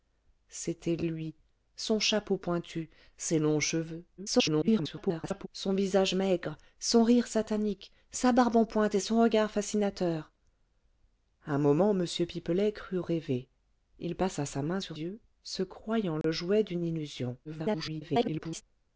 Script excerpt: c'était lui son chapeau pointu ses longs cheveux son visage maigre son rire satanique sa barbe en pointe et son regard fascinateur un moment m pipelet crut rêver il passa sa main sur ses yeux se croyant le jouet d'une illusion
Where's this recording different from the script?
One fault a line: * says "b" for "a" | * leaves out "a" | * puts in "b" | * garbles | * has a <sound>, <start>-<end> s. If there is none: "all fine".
* garbles
* leaves out "ses"
* has a dropout, 16.2-16.2 s
* garbles